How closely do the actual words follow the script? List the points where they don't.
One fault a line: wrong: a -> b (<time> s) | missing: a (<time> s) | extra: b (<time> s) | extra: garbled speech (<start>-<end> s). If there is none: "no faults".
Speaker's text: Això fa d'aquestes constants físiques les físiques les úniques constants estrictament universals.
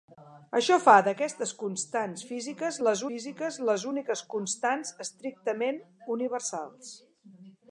no faults